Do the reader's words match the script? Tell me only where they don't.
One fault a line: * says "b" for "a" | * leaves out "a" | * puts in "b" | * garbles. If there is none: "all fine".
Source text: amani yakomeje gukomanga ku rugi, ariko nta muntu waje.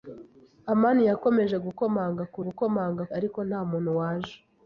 * says "gukomanga" for "rugi"